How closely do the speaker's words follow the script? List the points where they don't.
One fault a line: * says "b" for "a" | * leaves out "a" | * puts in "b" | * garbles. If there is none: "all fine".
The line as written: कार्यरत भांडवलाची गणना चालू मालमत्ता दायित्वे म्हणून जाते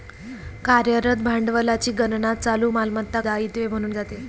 all fine